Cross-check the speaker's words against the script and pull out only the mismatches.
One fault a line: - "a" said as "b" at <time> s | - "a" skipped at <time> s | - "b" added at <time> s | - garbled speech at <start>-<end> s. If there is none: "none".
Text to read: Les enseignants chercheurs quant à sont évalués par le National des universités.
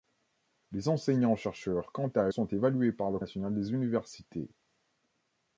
none